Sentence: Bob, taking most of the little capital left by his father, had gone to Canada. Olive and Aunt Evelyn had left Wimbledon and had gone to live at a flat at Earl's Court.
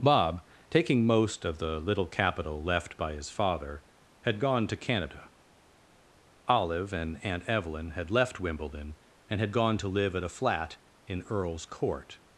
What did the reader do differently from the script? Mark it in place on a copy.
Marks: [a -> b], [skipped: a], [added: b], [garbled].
Bob, taking most of the little capital left by his father, had gone to Canada. Olive and Aunt Evelyn had left Wimbledon and had gone to live at a flat [at -> in] Earl's Court.